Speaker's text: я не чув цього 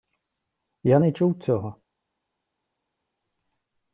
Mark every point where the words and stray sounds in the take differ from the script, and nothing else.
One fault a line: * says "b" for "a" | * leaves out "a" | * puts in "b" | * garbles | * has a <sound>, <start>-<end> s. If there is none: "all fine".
all fine